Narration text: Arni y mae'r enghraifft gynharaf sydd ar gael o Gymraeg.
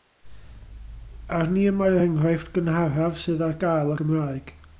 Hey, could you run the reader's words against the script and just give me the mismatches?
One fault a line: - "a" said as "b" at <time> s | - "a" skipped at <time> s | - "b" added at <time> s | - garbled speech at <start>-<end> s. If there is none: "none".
none